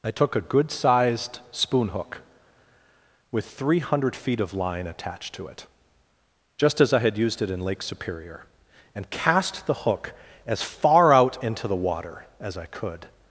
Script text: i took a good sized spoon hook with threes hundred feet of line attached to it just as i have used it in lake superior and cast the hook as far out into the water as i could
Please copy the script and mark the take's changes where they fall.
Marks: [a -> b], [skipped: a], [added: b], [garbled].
i took a good sized spoon hook with [threes -> three] hundred feet of line attached to it just as i [have -> had] used it in lake superior and cast the hook as far out into the water as i could